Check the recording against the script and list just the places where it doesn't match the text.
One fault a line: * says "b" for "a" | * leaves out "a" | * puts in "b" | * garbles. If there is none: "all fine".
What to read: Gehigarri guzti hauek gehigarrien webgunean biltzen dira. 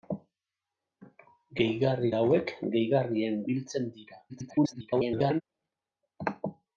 * leaves out "guzti"
* leaves out "webgunean"
* garbles